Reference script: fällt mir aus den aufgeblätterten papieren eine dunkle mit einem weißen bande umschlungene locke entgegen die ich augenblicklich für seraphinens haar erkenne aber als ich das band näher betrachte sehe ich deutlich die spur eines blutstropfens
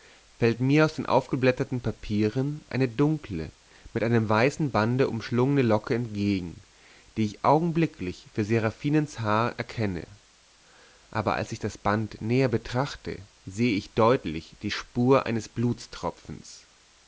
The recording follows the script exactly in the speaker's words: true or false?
true